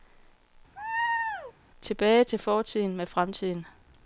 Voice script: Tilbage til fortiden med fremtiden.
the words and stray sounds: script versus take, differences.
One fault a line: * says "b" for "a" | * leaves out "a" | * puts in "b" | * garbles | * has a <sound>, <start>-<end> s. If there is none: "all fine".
* has a laugh, 0.8-1.5 s